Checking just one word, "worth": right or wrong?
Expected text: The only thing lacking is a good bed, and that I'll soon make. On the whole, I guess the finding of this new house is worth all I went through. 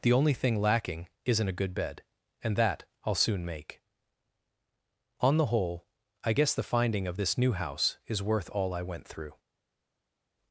right